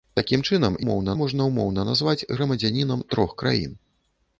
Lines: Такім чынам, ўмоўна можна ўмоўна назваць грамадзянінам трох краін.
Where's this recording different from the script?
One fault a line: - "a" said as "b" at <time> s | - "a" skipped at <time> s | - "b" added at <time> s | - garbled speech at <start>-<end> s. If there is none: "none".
none